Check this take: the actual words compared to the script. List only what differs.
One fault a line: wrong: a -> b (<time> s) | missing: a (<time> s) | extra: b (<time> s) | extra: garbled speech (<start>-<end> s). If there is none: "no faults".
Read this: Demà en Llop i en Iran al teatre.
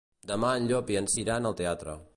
no faults